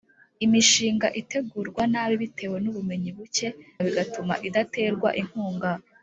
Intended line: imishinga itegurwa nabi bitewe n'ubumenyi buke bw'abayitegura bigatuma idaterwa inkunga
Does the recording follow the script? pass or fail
fail